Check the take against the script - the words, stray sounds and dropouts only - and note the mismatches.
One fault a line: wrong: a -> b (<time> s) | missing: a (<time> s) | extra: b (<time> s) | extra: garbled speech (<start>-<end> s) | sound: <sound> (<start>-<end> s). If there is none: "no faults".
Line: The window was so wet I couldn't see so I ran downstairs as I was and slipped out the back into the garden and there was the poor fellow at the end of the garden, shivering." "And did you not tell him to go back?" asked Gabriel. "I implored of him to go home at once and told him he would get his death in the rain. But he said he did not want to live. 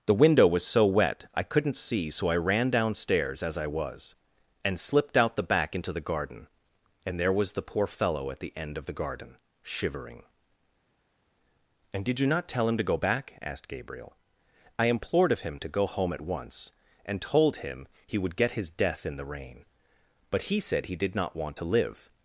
no faults